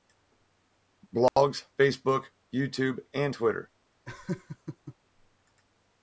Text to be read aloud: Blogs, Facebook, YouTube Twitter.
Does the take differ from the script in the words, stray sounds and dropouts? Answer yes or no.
yes